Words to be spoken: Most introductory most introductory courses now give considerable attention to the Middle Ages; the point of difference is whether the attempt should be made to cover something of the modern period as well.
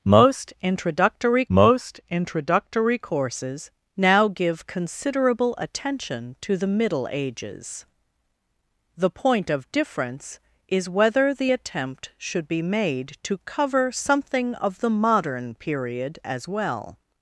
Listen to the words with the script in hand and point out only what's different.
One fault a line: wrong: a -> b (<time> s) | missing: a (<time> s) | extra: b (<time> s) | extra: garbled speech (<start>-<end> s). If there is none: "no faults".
no faults